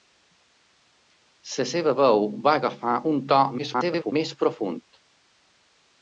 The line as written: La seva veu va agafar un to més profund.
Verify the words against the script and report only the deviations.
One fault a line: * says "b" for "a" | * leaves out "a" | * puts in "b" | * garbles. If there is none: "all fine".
* garbles